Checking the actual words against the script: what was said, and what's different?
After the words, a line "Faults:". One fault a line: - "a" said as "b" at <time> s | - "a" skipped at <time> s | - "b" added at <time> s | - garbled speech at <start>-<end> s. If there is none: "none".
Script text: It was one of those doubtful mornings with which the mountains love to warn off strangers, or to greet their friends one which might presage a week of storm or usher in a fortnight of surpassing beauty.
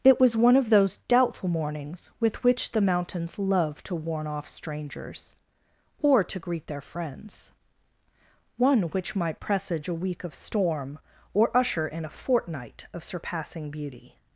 It was one of those doubtful mornings with which the mountains love to warn off strangers, or to greet their friends one which might presage a week of storm or usher in a fortnight of surpassing beauty.
Faults:
none